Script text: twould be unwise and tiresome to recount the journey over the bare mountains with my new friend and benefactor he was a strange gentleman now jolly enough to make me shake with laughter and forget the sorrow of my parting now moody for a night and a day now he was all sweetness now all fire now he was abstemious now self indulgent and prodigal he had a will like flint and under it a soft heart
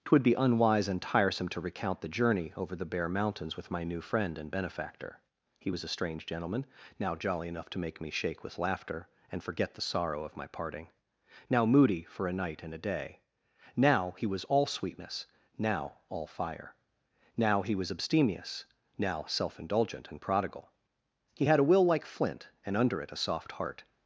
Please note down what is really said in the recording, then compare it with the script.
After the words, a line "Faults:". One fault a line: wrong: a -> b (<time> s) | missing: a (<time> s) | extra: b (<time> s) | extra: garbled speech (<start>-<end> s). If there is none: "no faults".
twould be unwise and tiresome to recount the journey over the bare mountains with my new friend and benefactor he was a strange gentleman now jolly enough to make me shake with laughter and forget the sorrow of my parting now moody for a night and a day now he was all sweetness now all fire now he was abstemious now self indulgent and prodigal he had a will like flint and under it a soft heart
Faults:
no faults